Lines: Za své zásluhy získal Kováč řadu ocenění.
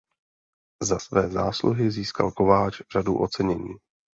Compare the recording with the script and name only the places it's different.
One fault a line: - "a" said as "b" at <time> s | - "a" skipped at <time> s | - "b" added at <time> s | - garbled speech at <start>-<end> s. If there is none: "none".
none